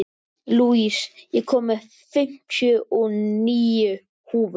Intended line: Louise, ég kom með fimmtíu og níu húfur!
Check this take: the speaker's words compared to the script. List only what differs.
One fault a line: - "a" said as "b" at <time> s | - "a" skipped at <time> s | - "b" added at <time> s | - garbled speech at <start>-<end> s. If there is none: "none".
none